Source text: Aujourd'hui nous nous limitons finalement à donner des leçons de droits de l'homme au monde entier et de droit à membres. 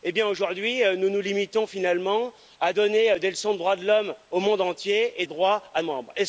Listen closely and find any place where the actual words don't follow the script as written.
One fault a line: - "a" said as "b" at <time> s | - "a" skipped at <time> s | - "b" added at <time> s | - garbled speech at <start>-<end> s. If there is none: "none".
none